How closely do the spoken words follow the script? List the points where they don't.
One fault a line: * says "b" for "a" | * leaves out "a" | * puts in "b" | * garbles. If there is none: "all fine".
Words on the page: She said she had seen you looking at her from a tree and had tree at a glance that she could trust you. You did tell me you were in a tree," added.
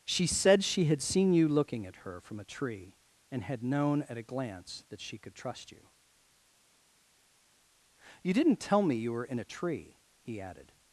* says "known" for "tree"
* says "didn't" for "did"
* puts in "he"